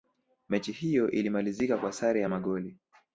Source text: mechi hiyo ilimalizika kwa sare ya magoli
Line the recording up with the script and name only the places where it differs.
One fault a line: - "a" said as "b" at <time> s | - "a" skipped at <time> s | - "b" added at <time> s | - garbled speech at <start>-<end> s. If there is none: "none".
none